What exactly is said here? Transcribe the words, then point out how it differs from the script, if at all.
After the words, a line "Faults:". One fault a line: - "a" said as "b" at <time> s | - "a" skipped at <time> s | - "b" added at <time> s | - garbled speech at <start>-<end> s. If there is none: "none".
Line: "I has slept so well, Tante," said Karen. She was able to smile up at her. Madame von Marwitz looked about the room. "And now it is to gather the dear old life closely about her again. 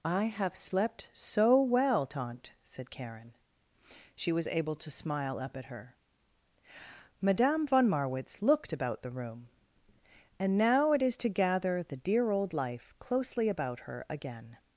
"I have slept so well, Tante," said Karen. She was able to smile up at her. Madame von Marwitz looked about the room. "And now it is to gather the dear old life closely about her again.
Faults:
- "has" said as "have" at 0.2 s